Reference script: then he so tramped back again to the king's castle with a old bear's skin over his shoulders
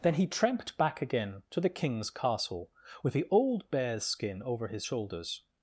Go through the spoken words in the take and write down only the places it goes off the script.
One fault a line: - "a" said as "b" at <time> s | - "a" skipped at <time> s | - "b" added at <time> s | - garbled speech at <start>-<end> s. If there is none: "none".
- "so" skipped at 0.2 s
- "a" said as "the" at 3.1 s